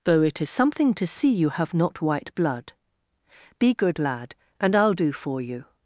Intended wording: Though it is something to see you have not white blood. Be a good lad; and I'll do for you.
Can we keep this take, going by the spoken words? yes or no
no